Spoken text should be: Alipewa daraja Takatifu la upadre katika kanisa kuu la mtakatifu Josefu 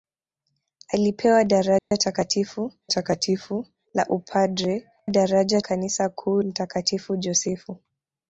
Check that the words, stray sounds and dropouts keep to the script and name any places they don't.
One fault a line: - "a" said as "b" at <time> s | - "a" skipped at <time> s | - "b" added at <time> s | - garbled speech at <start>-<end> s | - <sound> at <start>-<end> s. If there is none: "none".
- dropout at 1.8-1.9 s
- "Takatifu" added at 2.9 s
- "katika" said as "daraja" at 5.1 s
- "la" skipped at 6.4 s